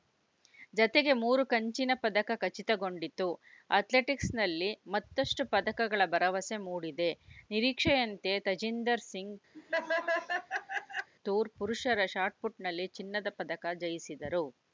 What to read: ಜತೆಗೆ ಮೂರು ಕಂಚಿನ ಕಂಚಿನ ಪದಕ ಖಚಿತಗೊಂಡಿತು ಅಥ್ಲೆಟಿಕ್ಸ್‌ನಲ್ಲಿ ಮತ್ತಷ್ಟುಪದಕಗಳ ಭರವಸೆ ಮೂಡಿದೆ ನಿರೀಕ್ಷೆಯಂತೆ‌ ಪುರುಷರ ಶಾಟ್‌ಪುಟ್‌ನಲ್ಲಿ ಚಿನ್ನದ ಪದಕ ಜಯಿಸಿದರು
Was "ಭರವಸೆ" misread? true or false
false